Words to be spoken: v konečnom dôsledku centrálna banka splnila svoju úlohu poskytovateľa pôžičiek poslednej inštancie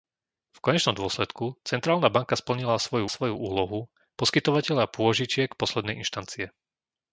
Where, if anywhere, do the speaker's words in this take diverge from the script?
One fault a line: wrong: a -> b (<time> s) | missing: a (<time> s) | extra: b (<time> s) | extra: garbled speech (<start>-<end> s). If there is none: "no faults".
extra: svoju (3.1 s)